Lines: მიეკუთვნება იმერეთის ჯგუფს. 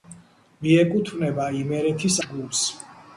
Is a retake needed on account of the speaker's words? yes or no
no